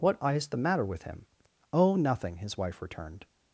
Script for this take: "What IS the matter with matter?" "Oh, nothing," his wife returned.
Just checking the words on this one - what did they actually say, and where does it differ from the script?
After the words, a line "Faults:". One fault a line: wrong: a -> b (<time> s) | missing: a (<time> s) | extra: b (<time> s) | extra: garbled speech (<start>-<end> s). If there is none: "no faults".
"What IS the matter with him?" "Oh, nothing," his wife returned.
Faults:
wrong: matter -> him (1.0 s)